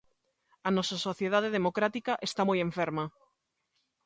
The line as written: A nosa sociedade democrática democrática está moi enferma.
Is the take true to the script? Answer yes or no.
no